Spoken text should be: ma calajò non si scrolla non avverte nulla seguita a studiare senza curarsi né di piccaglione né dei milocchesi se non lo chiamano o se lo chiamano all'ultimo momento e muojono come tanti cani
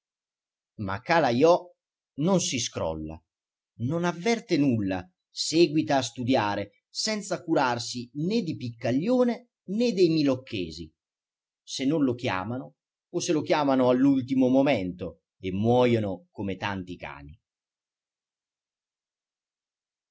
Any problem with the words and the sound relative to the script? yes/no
no